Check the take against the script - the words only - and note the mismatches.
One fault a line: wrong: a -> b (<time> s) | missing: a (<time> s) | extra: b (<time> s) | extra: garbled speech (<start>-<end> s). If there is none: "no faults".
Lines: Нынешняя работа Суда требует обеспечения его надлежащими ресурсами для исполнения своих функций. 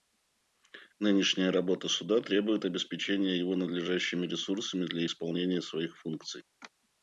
no faults